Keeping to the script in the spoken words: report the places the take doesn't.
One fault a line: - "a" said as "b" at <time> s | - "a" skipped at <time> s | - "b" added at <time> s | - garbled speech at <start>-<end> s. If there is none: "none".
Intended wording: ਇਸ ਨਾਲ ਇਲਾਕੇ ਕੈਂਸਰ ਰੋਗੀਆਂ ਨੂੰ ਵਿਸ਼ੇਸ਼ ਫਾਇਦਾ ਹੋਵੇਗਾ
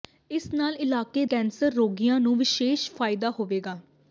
none